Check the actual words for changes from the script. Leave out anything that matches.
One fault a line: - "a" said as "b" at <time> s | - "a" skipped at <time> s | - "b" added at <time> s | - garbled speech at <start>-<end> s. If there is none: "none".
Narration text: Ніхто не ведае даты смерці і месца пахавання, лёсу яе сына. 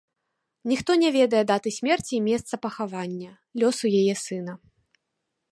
none